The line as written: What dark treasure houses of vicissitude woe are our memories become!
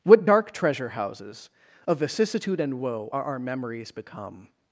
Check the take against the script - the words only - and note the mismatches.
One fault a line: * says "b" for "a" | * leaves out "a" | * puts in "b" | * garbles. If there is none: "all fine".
* puts in "and"